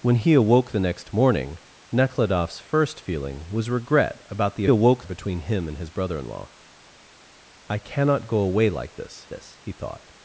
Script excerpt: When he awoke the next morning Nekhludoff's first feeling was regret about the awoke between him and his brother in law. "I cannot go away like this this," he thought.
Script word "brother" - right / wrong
right